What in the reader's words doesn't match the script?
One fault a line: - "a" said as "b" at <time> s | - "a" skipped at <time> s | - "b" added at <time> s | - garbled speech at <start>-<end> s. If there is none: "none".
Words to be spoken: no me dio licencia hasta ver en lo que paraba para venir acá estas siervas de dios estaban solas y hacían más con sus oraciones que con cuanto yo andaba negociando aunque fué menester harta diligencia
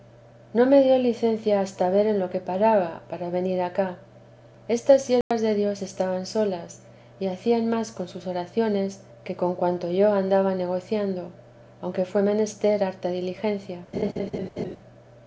none